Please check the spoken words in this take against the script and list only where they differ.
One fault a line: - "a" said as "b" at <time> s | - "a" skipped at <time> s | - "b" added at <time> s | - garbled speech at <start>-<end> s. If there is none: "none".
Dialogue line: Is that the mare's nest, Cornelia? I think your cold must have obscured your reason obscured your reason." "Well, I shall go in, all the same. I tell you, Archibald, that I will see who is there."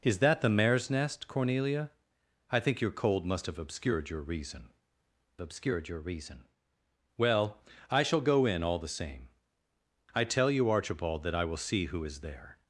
none